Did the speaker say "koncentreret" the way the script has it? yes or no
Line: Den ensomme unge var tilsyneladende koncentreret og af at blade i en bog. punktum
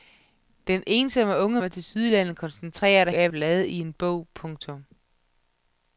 yes